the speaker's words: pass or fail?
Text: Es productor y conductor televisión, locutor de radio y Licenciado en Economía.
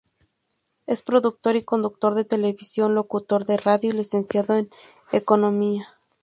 fail